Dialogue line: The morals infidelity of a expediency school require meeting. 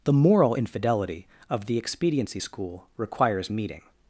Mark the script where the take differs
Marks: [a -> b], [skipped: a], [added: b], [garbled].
The [morals -> moral] infidelity of [a -> the] expediency school [require -> requires] meeting.